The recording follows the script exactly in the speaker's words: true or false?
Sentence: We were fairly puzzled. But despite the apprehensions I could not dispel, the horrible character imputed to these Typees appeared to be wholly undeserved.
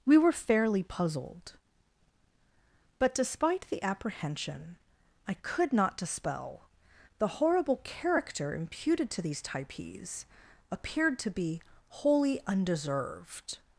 false